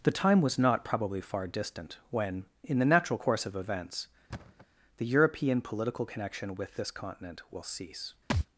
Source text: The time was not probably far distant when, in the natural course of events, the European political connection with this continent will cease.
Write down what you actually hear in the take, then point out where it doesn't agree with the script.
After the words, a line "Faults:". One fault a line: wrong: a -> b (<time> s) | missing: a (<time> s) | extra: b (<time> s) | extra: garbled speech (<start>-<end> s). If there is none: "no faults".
The time was not probably far distant when, in the natural course of events, the European political connection with this continent will cease.
Faults:
no faults